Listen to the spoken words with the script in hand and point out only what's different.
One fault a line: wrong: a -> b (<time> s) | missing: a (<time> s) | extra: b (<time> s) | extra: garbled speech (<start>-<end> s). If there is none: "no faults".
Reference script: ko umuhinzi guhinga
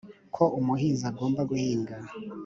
extra: agomba (1.1 s)